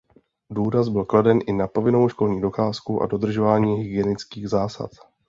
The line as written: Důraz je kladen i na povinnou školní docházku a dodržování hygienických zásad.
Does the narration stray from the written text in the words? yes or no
yes